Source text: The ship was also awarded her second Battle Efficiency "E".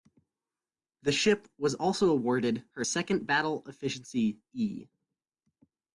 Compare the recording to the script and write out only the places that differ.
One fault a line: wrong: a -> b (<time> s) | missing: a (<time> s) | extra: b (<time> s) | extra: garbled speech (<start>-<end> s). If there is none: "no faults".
no faults